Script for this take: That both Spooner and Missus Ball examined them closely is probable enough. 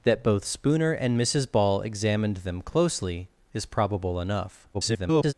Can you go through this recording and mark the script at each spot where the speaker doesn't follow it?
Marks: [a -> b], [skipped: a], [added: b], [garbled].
That both Spooner and Missus Ball examined them closely is probable enough. [garbled]